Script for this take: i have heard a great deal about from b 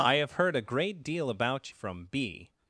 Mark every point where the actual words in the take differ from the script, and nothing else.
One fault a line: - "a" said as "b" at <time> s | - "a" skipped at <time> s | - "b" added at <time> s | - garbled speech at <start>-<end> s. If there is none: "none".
none